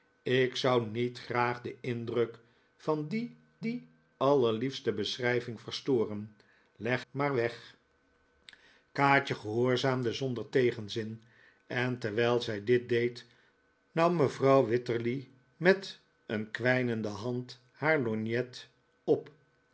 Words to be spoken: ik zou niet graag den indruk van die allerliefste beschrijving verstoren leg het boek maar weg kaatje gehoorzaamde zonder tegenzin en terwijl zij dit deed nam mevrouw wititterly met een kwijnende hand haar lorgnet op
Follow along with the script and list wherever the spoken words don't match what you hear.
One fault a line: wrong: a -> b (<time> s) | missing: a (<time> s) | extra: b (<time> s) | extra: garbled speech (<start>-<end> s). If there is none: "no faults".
extra: die (3.6 s)
missing: het boek (7.0 s)